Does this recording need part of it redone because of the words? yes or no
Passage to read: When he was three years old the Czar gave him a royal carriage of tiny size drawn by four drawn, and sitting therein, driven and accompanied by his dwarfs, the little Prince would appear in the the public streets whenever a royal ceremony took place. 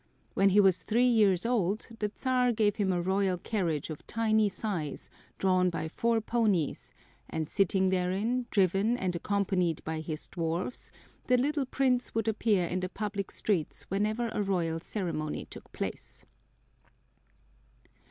yes